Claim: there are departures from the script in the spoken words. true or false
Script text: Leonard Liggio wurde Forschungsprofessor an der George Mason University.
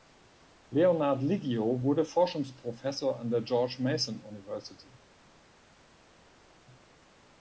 false